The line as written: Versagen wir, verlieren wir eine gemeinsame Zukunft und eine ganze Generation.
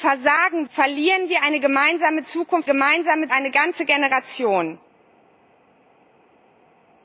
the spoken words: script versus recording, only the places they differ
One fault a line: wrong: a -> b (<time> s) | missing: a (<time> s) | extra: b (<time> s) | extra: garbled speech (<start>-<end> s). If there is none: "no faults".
missing: wir (0.7 s)
wrong: und -> gemeinsame (2.7 s)